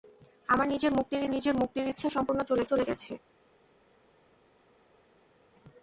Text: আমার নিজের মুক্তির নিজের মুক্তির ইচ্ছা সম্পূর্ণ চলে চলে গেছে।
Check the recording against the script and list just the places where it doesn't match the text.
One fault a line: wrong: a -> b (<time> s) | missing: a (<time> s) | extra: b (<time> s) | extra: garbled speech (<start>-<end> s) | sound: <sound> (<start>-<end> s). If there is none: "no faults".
no faults